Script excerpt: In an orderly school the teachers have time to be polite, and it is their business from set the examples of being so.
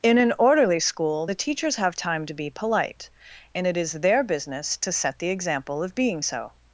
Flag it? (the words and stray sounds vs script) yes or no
yes